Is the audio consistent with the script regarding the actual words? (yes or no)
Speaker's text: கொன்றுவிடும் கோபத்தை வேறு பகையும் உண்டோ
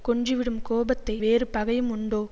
yes